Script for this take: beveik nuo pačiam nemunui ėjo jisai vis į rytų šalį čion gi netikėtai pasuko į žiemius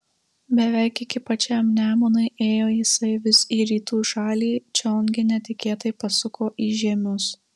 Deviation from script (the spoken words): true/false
true